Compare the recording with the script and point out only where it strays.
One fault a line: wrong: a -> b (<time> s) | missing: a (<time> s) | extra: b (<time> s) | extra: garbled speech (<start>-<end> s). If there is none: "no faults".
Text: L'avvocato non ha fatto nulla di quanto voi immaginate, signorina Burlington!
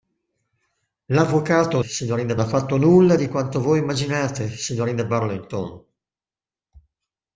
wrong: non -> signorina (1.8 s)